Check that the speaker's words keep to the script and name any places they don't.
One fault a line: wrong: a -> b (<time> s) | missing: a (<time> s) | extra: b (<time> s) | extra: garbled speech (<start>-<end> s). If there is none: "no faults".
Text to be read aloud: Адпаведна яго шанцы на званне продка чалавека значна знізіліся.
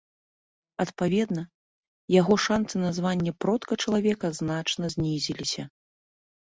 no faults